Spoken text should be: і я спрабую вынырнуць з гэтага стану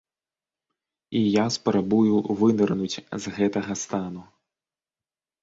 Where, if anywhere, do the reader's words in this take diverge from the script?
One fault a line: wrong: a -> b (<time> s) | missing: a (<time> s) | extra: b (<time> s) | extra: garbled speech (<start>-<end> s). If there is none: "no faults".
no faults